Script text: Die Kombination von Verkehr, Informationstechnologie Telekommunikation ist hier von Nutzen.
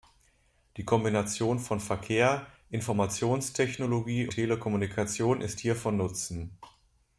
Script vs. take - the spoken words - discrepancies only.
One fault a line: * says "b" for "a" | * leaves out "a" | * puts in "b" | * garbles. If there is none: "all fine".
all fine